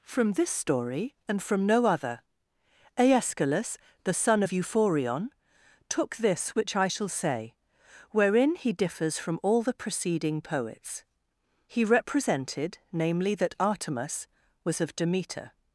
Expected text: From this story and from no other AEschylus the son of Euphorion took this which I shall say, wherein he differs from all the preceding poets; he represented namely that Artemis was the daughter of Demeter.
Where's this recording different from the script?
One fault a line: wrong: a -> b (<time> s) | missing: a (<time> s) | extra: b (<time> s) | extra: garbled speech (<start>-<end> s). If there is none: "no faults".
missing: the daughter (14.8 s)